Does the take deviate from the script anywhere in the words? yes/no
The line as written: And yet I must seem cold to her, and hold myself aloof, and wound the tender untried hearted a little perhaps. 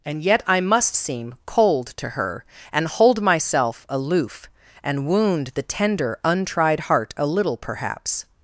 yes